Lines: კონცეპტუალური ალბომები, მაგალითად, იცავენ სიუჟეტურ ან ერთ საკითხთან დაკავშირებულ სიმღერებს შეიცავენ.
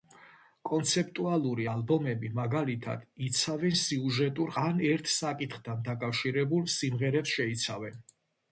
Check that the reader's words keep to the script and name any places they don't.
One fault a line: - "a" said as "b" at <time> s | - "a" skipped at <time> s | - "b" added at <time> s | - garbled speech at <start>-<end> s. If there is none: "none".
none